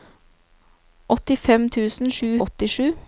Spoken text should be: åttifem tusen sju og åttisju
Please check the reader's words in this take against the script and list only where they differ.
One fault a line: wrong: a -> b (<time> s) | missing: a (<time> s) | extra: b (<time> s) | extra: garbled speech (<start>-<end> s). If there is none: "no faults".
no faults